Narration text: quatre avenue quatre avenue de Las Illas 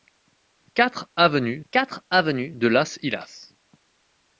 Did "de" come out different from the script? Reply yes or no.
no